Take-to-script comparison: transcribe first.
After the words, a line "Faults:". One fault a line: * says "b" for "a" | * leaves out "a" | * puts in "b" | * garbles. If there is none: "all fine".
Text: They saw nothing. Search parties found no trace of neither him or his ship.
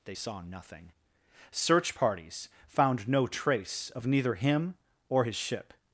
They saw nothing. Search parties found no trace of neither him or his ship.
Faults:
all fine